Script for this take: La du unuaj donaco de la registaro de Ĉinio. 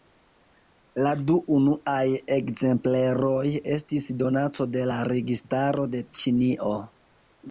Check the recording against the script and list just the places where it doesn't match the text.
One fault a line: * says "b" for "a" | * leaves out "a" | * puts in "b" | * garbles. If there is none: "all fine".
* puts in "ekzempleroj estis"